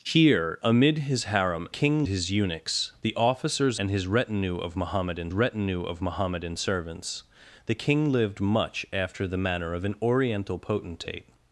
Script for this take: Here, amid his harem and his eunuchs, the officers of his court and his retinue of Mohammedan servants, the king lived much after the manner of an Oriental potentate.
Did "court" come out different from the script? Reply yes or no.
yes